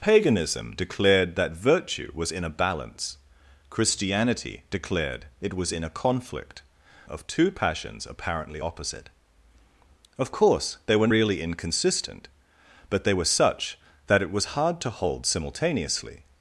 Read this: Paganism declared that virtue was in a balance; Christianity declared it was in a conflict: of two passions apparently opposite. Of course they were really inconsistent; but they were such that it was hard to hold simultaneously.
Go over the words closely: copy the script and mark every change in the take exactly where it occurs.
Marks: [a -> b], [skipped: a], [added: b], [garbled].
Paganism declared that virtue was in a balance; Christianity declared it was in a conflict: of two passions apparently opposite. Of course they were really inconsistent; but they were such that it was hard to hold simultaneously.